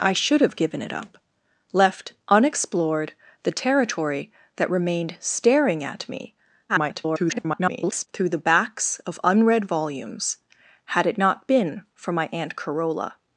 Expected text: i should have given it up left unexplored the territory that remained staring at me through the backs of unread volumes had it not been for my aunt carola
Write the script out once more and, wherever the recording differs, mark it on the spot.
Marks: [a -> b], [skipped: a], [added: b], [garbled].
i should have given it up left unexplored the territory that remained staring at me [garbled] through the backs of unread volumes had it not been for my aunt carola